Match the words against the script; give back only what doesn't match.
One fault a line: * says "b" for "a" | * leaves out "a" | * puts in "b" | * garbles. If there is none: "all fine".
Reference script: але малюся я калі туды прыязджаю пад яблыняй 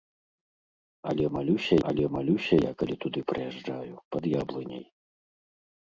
* puts in "але малюся"